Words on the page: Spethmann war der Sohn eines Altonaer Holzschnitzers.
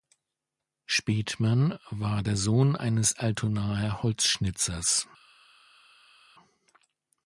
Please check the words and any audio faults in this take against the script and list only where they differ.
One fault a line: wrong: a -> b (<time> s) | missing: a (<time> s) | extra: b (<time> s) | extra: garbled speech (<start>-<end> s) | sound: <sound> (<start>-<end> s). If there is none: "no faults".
no faults